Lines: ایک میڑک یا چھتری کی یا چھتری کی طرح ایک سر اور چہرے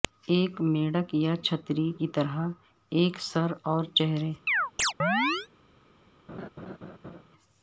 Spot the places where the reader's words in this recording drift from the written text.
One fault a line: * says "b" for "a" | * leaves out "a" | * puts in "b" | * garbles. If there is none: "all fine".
* leaves out "یا چھتری کی"